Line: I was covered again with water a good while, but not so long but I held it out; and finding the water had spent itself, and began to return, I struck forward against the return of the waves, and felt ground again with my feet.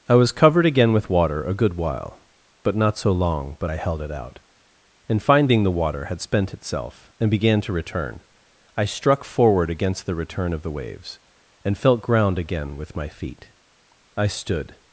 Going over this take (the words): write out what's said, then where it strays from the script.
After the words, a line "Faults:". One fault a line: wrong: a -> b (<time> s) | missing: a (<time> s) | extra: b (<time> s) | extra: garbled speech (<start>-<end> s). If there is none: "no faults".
I was covered again with water a good while, but not so long but I held it out; and finding the water had spent itself, and began to return, I struck forward against the return of the waves, and felt ground again with my feet. I stood
Faults:
extra: I stood (14.2 s)